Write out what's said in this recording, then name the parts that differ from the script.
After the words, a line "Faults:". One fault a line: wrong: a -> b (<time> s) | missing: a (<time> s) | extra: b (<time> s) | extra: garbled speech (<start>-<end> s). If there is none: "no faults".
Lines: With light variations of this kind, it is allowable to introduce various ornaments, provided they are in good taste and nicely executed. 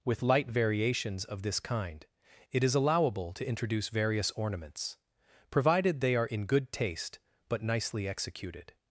With light variations of this kind, it is allowable to introduce various ornaments, provided they are in good taste but nicely executed.
Faults:
wrong: and -> but (7.5 s)